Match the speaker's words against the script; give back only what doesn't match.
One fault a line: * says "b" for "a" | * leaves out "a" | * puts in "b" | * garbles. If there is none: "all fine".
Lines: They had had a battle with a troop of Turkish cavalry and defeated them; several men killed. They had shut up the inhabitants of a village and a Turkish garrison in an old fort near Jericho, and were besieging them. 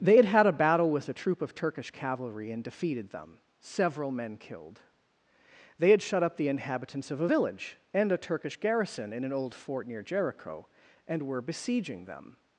all fine